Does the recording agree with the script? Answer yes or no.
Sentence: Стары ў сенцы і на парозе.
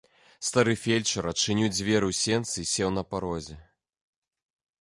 no